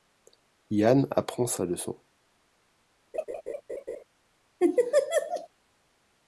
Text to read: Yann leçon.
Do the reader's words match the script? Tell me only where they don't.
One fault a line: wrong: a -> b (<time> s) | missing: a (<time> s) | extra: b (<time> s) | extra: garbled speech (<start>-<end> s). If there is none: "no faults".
extra: apprend sa (1.1 s)